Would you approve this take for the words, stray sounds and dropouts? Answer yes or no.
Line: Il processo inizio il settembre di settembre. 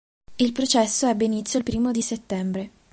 no